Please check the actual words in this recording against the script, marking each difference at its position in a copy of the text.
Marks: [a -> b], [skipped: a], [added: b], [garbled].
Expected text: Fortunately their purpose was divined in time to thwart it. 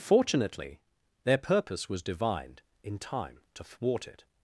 Fortunately their purpose was divined in time to thwart it.